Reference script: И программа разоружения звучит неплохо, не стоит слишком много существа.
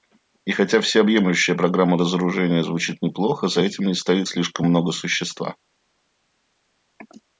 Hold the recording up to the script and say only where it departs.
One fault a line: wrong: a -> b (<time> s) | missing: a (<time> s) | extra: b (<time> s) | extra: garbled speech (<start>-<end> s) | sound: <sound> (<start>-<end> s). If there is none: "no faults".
extra: хотя всеобъемлющая (0.5 s)
extra: за этим (3.5 s)